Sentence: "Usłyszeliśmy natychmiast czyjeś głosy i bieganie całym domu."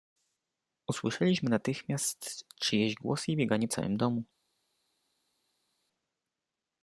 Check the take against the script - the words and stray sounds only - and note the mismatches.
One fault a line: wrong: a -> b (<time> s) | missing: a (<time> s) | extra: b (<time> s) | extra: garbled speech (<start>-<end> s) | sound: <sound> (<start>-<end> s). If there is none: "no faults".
no faults